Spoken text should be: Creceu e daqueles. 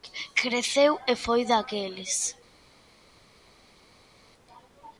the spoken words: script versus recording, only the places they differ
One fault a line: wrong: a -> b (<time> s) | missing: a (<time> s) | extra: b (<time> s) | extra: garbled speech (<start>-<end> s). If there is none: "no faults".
extra: foi (1.1 s)